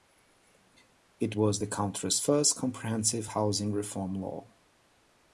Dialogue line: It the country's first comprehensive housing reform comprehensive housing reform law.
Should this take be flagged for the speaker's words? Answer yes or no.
yes